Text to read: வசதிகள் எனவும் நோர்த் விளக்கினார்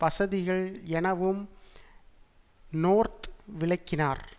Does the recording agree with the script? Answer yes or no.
yes